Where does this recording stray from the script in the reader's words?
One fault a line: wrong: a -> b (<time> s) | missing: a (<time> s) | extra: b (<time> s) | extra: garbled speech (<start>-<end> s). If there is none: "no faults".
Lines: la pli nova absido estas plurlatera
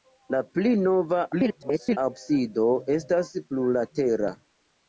extra: garbled speech (1.3-2.0 s)